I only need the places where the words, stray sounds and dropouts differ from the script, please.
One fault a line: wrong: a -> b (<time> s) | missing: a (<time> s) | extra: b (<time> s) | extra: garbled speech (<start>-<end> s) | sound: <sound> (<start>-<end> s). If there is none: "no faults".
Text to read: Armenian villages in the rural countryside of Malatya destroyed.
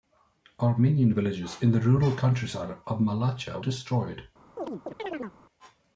sound: chirp (4.6-5.4 s)